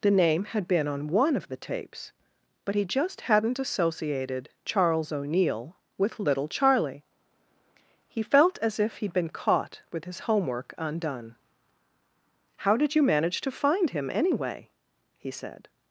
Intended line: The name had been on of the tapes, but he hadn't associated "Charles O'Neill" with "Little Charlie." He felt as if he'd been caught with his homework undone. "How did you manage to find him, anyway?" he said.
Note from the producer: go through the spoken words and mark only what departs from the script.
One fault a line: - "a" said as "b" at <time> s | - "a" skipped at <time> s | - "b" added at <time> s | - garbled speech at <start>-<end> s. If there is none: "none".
- "one" added at 1.1 s
- "just" added at 2.9 s